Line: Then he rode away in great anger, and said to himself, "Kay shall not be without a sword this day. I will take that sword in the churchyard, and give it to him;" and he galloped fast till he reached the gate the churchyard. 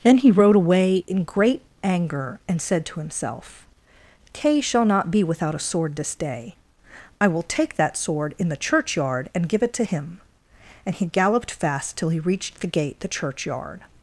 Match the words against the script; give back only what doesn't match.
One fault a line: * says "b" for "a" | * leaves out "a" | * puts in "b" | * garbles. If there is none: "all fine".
all fine